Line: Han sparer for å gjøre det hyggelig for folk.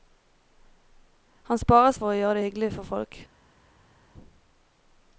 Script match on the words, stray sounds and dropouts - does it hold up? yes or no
yes